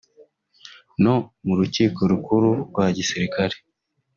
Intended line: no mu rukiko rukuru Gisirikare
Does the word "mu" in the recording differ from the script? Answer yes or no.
no